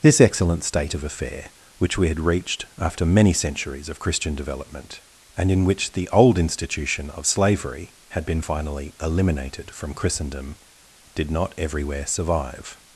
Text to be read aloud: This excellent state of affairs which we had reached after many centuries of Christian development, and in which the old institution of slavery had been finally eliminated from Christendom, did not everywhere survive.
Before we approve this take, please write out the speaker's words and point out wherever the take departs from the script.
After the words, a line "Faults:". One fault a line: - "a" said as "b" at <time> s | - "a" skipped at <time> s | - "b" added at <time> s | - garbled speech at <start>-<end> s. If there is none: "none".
This excellent state of affair which we had reached after many centuries of Christian development, and in which the old institution of slavery had been finally eliminated from Christendom, did not everywhere survive.
Faults:
- "affairs" said as "affair" at 1.0 s